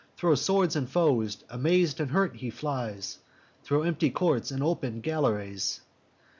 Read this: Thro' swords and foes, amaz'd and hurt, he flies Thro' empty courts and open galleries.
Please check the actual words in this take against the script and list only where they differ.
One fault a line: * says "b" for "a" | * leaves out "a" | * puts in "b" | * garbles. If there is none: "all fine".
all fine